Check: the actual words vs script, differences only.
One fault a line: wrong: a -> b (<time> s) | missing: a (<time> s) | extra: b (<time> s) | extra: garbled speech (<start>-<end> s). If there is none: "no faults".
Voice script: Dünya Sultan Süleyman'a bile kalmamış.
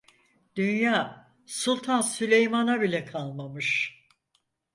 no faults